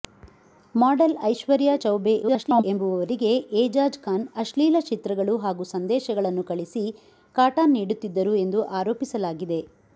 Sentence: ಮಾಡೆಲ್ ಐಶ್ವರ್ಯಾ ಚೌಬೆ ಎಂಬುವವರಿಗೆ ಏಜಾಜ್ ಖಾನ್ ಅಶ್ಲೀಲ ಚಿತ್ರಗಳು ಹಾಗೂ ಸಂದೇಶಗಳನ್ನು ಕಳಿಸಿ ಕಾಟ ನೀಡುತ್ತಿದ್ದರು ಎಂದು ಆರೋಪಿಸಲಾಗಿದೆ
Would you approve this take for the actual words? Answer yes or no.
no